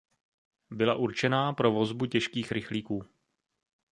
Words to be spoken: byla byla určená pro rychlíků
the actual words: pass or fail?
fail